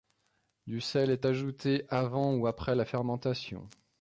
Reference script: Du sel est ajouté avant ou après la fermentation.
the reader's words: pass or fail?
pass